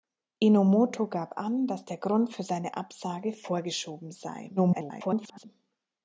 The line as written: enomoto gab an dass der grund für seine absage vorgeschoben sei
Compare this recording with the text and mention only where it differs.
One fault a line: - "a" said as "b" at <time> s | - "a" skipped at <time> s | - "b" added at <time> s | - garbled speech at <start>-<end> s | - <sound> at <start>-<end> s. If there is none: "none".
- garbled speech at 4.6-5.5 s